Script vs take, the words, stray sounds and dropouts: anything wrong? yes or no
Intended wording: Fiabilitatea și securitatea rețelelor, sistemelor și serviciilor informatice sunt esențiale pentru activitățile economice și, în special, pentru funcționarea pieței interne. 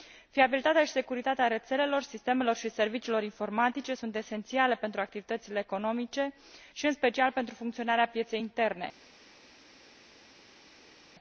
no